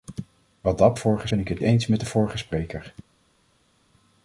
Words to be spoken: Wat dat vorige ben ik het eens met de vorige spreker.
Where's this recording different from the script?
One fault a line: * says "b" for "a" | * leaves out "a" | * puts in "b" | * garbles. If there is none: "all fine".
all fine